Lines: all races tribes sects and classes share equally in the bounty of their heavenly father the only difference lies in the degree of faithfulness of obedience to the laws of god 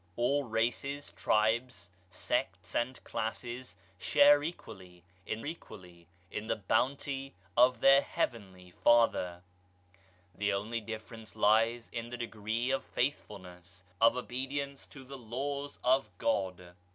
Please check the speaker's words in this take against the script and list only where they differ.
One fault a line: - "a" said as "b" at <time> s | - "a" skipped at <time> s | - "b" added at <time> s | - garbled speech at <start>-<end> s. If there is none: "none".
- "equally in" added at 5.4 s